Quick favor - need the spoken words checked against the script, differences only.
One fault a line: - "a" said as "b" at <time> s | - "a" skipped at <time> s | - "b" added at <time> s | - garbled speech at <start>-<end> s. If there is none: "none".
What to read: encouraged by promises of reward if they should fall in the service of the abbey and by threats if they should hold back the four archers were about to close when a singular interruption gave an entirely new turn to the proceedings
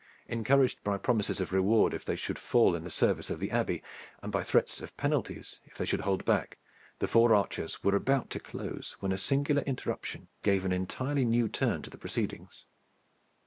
- "of penalties" added at 4.8 s